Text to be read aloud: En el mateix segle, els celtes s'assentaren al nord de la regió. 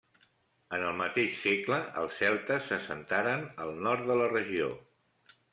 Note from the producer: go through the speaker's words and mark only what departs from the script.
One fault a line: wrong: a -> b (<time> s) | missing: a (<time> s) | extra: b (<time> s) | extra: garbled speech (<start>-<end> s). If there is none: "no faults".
no faults